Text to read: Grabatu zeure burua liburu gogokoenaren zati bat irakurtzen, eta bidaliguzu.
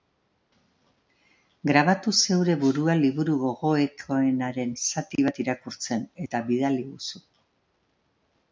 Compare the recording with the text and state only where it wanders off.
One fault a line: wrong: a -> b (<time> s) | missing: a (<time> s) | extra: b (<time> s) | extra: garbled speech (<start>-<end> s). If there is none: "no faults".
no faults